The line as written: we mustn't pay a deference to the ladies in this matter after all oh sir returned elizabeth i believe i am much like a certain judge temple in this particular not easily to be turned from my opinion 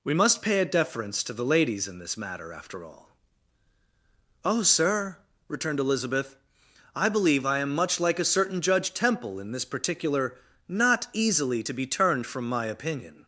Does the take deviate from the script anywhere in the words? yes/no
yes